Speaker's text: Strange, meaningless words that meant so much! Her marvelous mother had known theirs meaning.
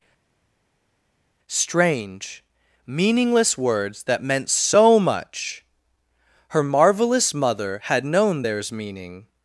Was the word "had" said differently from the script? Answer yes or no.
no